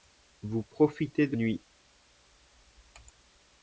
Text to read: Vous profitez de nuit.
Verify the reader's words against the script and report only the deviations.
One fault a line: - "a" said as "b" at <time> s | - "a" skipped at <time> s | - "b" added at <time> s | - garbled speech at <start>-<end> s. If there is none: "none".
none